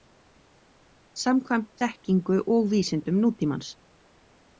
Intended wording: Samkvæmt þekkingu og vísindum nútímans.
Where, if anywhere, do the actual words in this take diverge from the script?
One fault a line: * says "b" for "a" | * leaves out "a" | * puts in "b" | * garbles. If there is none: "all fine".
all fine